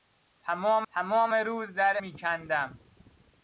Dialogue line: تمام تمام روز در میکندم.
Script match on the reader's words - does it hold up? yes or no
yes